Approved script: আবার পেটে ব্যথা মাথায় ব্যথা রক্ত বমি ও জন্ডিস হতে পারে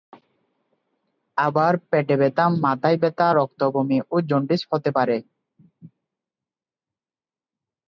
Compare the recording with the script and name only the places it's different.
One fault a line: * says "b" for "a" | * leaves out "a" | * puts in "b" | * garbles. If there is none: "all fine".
all fine